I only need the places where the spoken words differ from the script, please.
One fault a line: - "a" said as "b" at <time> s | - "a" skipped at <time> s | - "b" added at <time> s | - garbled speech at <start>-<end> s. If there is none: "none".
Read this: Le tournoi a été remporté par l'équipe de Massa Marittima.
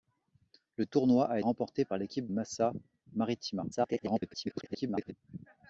- "été" skipped at 1.4 s
- "de" skipped at 2.3 s
- garbled speech at 3.7-5.1 s